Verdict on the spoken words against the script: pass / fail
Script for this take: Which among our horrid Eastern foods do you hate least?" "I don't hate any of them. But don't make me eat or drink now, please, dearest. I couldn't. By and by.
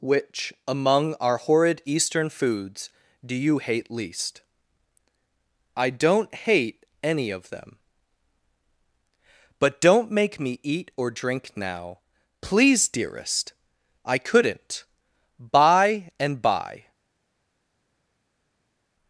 pass